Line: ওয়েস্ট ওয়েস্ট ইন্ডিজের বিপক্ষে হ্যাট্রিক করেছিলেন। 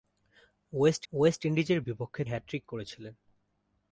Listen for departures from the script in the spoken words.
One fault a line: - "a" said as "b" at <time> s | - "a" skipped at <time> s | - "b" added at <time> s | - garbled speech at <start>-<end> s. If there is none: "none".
none